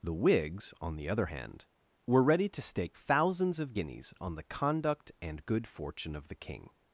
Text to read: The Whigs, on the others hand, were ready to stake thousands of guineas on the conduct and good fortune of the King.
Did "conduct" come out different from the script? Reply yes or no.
no